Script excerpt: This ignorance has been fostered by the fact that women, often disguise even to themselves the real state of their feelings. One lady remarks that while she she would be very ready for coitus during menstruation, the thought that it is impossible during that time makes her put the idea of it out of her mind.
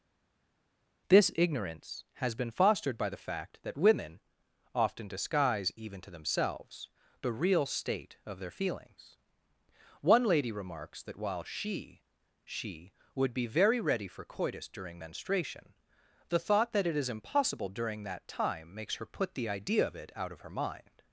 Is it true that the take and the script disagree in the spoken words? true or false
false